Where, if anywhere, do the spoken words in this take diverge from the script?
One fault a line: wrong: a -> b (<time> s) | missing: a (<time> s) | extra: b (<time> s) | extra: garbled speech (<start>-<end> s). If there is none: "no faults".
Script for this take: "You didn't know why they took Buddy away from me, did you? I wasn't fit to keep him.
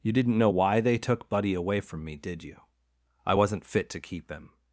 no faults